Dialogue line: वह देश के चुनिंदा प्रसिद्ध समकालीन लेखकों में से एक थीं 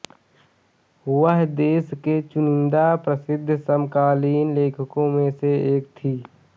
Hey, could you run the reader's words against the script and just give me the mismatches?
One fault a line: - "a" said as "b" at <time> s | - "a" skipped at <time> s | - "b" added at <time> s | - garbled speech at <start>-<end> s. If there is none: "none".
none